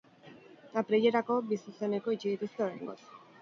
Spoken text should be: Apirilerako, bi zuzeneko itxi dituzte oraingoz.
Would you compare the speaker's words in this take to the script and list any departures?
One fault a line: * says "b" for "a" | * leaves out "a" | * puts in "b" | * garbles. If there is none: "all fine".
all fine